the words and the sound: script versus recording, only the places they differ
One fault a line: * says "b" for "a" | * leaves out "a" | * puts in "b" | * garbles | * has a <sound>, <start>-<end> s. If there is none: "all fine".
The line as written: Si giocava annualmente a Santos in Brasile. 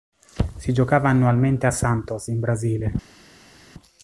all fine